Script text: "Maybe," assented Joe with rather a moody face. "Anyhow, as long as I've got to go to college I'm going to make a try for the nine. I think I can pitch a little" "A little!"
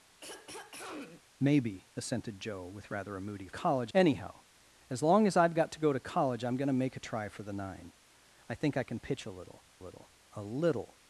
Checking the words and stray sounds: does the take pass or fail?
fail